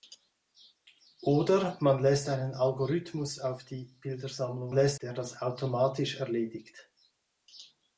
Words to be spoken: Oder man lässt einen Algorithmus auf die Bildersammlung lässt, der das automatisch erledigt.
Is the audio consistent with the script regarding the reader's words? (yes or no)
yes